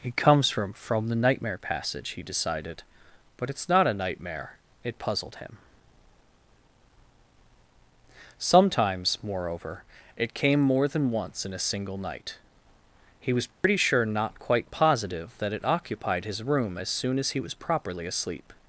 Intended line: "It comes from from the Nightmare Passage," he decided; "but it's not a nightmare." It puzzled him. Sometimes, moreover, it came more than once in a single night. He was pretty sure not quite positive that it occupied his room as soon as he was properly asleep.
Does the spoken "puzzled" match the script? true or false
true